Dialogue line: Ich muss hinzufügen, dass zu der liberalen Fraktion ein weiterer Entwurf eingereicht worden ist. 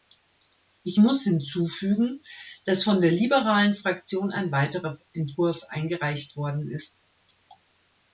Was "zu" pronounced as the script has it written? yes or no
no